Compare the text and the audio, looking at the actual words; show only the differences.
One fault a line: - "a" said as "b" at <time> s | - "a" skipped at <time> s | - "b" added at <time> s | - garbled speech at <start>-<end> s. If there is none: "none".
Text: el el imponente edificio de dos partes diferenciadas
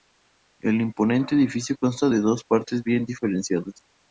- "el" skipped at 0.8 s
- "consta" added at 1.8 s
- "bien" added at 2.8 s